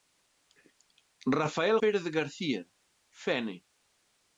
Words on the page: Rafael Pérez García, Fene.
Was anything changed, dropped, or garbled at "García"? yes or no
no